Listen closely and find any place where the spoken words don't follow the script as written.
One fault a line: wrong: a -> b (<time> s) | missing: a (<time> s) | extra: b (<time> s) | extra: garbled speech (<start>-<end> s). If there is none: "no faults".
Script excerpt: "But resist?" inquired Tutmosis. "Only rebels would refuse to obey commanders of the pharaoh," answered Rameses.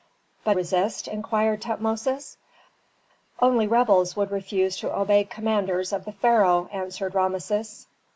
no faults